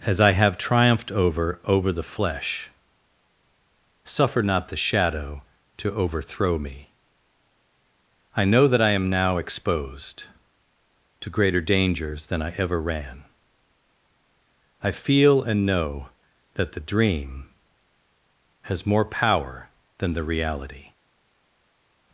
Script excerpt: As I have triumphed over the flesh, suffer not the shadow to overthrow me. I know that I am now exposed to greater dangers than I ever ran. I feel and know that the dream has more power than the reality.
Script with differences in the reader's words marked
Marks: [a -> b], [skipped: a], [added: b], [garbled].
As I have triumphed over [added: over] the flesh, suffer not the shadow to overthrow me. I know that I am now exposed to greater dangers than I ever ran. I feel and know that the dream has more power than the reality.